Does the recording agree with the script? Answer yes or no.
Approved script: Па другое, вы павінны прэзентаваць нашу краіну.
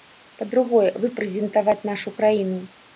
no